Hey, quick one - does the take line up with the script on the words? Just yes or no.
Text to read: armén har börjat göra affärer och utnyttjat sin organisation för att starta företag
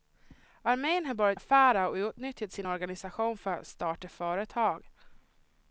no